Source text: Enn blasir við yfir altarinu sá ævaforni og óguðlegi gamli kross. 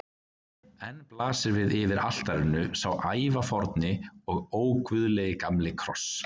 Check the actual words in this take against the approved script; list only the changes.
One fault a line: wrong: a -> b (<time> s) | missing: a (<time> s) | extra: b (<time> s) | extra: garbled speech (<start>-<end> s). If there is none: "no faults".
no faults